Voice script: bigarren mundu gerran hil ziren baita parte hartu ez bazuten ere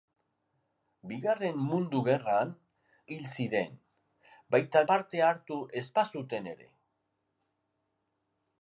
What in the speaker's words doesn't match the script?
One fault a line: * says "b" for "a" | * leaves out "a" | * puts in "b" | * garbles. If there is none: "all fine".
all fine